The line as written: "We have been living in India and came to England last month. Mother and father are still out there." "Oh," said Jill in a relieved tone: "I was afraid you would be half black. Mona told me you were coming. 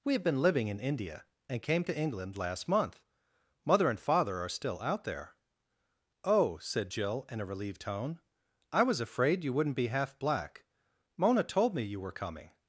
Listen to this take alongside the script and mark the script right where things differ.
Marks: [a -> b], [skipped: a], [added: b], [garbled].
"We have been living in India and came to England last month. Mother and father are still out there." "Oh," said Jill in a relieved tone: "I was afraid you [would -> wouldn't] be half black. Mona told me you were coming.